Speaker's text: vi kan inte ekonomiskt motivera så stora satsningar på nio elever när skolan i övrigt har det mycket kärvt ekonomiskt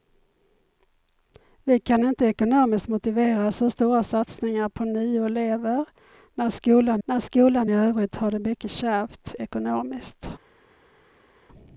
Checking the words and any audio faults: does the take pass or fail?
fail